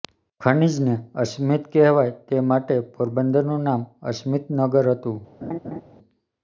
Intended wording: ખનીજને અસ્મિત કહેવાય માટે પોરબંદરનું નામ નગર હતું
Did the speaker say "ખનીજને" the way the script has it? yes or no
yes